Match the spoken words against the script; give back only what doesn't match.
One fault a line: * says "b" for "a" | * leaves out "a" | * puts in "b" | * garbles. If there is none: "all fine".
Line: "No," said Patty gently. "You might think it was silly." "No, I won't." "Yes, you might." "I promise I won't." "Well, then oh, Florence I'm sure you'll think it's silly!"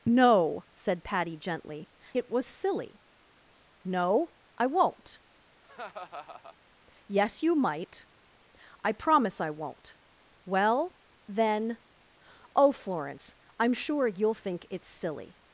* leaves out "You might think"